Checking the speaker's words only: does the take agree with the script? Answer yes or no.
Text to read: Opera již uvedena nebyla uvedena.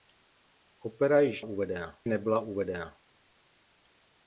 yes